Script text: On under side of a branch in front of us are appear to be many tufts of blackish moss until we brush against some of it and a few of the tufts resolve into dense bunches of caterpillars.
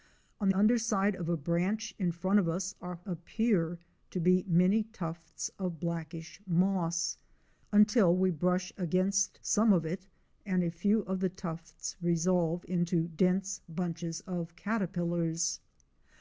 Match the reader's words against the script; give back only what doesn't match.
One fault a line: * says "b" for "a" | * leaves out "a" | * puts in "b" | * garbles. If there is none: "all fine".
all fine